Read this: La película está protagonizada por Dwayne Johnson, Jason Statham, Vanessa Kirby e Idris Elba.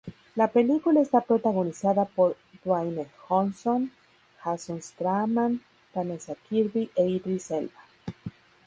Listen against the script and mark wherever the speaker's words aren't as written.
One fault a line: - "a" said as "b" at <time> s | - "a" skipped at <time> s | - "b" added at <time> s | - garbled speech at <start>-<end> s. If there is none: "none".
none